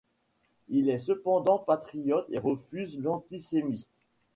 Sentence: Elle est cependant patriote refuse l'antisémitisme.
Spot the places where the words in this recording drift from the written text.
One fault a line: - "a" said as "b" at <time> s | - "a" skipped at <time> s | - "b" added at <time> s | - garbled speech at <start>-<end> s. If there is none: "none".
- "Elle" said as "Il" at 0.7 s
- "et" added at 2.3 s